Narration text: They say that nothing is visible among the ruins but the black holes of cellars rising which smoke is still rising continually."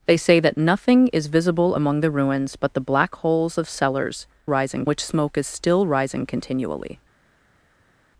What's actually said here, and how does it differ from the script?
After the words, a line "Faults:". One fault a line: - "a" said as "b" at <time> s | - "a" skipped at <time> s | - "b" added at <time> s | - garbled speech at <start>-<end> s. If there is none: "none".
They say that nothing is visible among the ruins but the black holes of cellars rising which smoke is still rising continually."
Faults:
none